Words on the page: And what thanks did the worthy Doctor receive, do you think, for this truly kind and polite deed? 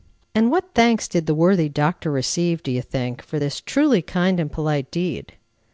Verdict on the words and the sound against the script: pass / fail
pass